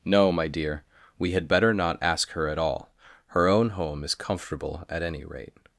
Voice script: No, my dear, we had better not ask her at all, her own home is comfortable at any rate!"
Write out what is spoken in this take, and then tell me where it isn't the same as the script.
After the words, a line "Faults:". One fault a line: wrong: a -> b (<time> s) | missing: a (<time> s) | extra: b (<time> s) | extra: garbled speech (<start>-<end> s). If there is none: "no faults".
No, my dear, we had better not ask her at all, her own home is comfortable at any rate!"
Faults:
no faults